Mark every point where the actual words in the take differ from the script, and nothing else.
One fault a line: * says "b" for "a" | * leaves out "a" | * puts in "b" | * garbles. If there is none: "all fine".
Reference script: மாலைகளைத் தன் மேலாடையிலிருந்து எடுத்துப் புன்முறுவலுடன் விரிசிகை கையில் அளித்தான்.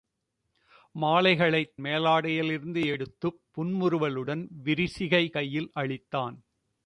* leaves out "தன்"